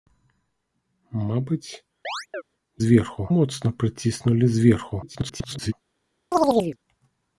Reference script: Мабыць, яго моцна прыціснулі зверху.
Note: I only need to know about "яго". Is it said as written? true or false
false